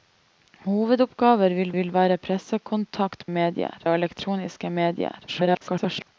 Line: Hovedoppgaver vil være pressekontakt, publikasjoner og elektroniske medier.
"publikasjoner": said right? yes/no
no